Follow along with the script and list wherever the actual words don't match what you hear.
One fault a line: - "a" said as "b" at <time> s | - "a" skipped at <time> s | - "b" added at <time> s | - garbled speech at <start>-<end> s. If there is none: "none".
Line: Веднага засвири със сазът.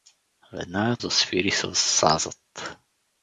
none